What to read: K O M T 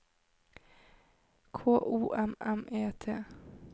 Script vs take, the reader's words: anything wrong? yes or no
yes